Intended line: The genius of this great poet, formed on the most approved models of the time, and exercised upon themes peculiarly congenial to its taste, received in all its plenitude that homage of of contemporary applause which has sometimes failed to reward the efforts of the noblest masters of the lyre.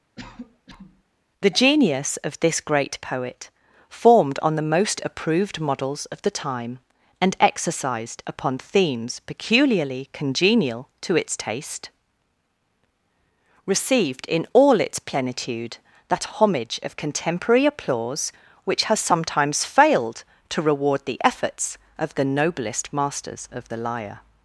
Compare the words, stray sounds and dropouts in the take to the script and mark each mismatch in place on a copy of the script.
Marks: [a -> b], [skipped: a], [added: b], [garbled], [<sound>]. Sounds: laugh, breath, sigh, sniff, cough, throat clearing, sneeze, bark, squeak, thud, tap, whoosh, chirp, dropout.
[cough] The genius of this great poet, formed on the most approved models of the time, and exercised upon themes peculiarly congenial to its taste, received in all its plenitude that homage of [skipped: of] contemporary applause which has sometimes failed to reward the efforts of the noblest masters of the lyre.